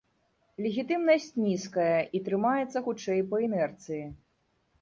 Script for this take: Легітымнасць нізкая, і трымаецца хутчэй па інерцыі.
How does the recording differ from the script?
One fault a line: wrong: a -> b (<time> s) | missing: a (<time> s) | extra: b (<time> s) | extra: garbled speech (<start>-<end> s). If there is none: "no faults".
no faults